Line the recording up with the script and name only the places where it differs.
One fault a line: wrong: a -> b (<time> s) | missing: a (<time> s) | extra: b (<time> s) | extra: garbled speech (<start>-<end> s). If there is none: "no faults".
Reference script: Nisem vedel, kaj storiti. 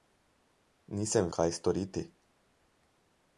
missing: vedel (1.3 s)